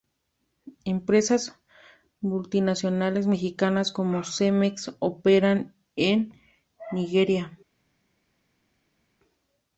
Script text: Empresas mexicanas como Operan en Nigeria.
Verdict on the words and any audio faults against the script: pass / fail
fail